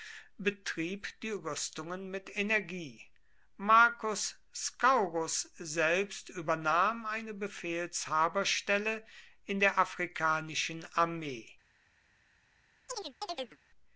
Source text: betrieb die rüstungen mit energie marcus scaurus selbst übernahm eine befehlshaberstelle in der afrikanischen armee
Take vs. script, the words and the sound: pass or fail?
fail